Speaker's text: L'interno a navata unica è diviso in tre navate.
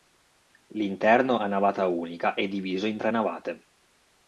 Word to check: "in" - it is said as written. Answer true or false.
true